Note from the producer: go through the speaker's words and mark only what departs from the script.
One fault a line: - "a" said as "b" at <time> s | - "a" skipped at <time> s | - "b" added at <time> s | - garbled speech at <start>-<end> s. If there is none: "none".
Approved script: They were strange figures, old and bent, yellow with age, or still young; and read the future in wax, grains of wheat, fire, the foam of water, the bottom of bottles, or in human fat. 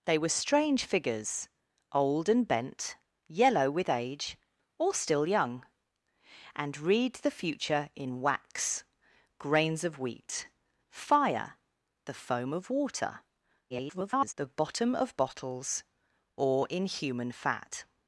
- garbled speech at 13.7-14.3 s